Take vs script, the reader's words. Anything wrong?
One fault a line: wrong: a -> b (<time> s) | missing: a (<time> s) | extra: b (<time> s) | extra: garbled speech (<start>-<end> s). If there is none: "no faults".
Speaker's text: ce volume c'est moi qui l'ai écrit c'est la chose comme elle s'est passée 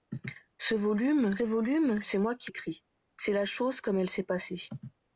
extra: volume (1.4 s)
missing: l'ai (2.5 s)